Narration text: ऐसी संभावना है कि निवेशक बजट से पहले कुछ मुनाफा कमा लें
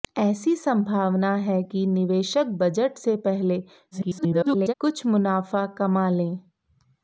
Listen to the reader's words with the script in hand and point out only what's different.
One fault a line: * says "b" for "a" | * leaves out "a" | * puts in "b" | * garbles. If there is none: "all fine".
* garbles